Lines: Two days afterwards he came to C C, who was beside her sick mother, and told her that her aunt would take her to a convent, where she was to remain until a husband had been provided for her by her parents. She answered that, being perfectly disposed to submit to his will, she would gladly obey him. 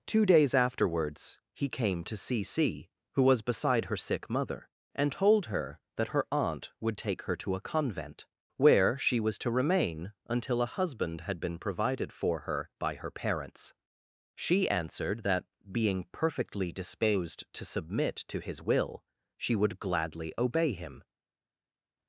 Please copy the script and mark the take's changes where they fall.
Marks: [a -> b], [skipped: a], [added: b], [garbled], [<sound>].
Two days afterwards he came to C C, who was beside her sick mother, and told her that her aunt would take her to a convent, where she was to remain until a husband had been provided for her by her parents. She answered that, being perfectly disposed to submit to his will, she would gladly obey him.